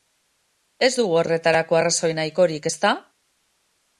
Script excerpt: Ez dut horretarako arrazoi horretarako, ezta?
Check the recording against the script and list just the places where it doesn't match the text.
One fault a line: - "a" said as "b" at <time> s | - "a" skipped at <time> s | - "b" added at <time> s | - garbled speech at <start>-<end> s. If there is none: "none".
- "dut" said as "dugu" at 1.0 s
- "horretarako" said as "nahikorik" at 2.2 s